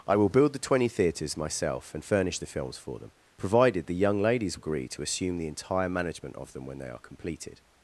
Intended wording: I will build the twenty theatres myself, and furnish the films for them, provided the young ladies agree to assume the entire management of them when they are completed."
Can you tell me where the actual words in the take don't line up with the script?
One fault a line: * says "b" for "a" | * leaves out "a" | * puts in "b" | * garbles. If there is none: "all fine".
all fine